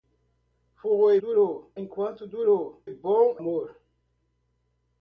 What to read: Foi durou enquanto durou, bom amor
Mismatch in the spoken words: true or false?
false